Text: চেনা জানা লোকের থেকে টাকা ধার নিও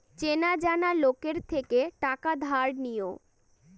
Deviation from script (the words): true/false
false